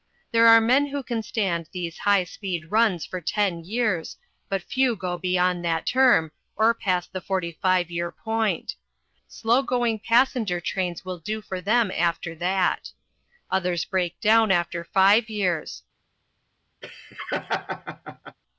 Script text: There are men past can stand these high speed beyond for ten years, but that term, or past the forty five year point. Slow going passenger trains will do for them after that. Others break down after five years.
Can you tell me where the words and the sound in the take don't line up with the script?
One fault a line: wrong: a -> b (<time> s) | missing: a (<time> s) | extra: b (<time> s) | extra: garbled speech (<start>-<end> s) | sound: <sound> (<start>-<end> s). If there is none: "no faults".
wrong: past -> who (0.9 s)
wrong: beyond -> runs (2.7 s)
extra: few go beyond (4.6 s)
sound: laugh (16.8-18.4 s)